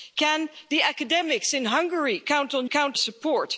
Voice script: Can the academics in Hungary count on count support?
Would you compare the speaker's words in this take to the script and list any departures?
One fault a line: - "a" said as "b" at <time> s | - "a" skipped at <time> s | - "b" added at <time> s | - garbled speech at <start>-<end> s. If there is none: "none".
none